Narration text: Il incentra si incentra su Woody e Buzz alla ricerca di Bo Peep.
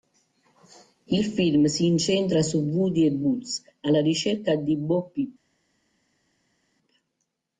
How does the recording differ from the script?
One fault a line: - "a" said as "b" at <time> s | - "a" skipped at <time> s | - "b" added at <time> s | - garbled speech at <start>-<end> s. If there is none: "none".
- "incentra" said as "film" at 1.2 s